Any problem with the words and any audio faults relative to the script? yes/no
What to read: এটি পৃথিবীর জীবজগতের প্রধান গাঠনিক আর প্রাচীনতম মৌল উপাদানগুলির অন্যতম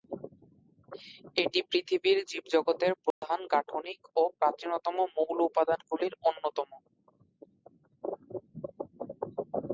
yes